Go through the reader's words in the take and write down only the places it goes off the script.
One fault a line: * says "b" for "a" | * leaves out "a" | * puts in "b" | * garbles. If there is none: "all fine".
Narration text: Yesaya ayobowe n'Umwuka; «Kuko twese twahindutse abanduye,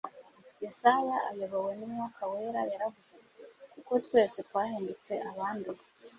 * puts in "Wera yaravuze ati"